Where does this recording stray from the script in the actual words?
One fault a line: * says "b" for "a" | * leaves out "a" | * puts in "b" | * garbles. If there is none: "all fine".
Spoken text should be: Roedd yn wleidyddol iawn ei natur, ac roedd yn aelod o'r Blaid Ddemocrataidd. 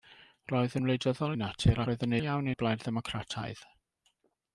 * leaves out "iawn"
* leaves out "ac"
* says "iawn" for "aelod"